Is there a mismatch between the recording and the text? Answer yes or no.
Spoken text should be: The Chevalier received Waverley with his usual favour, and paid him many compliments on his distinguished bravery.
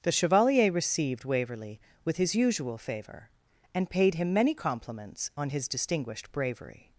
no